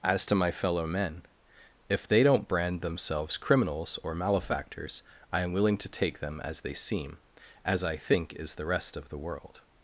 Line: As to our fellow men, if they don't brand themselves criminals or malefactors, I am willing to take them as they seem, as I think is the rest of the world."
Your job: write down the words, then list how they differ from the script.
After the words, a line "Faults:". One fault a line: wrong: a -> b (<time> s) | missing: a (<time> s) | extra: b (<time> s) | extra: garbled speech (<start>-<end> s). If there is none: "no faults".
As to my fellow men, if they don't brand themselves criminals or malefactors, I am willing to take them as they seem, as I think is the rest of the world."
Faults:
wrong: our -> my (0.4 s)